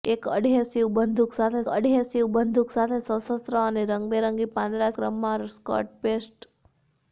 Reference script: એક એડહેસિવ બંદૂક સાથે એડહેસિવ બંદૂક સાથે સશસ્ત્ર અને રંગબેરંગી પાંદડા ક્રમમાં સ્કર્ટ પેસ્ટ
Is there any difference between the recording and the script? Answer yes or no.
no